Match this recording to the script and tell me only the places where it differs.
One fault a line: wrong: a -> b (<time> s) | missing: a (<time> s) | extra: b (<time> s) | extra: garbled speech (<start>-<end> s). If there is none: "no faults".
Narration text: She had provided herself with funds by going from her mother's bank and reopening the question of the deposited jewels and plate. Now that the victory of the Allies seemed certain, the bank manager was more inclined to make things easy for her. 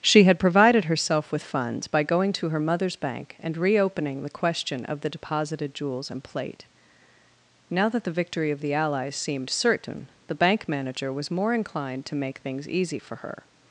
wrong: from -> to (2.3 s)